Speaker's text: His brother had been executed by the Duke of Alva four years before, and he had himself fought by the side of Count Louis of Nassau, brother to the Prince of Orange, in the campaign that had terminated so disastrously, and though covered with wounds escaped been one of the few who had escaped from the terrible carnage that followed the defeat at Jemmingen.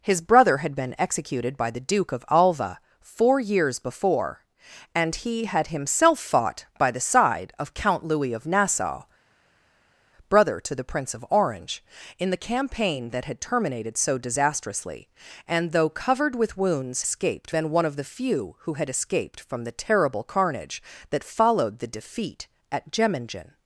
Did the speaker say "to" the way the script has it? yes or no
yes